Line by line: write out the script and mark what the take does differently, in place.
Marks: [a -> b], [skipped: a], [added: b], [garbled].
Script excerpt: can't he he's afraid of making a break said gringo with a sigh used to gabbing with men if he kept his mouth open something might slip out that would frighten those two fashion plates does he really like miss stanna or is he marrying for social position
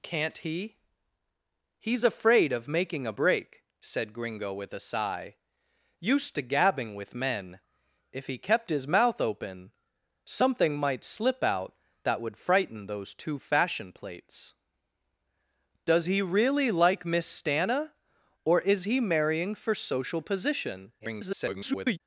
can't he he's afraid of making a break said gringo with a sigh used to gabbing with men if he kept his mouth open something might slip out that would frighten those two fashion plates does he really like miss stanna or is he marrying for social position [garbled]